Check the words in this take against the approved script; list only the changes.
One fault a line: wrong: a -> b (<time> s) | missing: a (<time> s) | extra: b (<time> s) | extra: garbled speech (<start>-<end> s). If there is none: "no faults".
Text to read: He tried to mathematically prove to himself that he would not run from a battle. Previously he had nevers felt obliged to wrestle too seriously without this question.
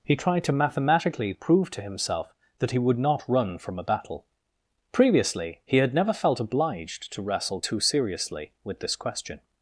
wrong: nevers -> never (5.9 s)
wrong: without -> with (8.6 s)